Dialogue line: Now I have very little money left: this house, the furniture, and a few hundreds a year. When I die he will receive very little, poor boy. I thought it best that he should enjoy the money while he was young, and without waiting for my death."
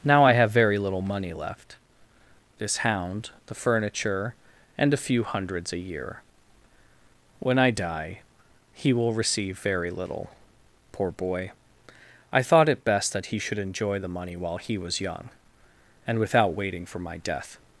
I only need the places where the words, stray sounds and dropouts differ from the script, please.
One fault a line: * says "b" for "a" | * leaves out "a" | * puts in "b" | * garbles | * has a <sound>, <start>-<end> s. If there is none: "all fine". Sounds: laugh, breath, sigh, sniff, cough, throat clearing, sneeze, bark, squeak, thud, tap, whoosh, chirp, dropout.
* says "hound" for "house"